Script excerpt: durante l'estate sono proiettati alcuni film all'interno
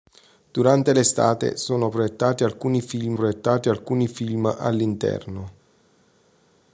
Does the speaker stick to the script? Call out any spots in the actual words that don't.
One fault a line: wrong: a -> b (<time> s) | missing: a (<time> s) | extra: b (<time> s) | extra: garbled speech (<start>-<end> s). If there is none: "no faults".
extra: proiettati alcuni film (3.1 s)